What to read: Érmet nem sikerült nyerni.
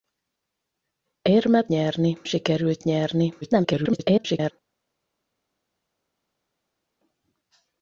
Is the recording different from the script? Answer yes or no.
yes